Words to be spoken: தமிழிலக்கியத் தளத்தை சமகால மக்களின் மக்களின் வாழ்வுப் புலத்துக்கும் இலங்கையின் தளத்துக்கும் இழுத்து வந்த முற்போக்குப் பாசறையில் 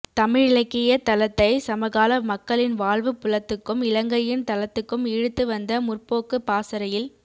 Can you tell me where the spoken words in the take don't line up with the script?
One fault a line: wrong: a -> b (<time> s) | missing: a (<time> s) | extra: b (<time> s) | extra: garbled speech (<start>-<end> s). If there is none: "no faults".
missing: மக்களின் (2.8 s)